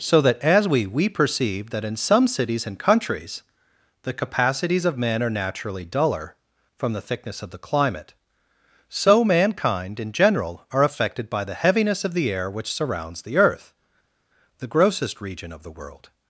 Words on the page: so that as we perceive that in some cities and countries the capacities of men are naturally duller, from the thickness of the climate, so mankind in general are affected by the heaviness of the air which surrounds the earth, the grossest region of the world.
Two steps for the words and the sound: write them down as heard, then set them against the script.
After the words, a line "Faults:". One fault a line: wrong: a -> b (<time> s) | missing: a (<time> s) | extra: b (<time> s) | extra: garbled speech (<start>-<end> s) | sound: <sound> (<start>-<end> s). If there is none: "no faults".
so that as we we perceive that in some cities and countries the capacities of men are naturally duller, from the thickness of the climate, so mankind in general are affected by the heaviness of the air which surrounds the earth, the grossest region of the world.
Faults:
extra: we (0.9 s)